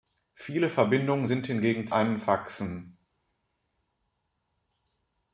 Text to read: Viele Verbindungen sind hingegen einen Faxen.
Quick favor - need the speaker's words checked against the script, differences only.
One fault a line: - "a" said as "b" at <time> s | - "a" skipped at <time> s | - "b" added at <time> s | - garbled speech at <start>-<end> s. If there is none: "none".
none